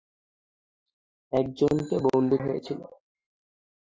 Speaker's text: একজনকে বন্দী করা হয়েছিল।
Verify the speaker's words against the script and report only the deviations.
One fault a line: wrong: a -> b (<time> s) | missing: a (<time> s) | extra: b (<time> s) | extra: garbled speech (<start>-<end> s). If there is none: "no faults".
missing: করা (2.4 s)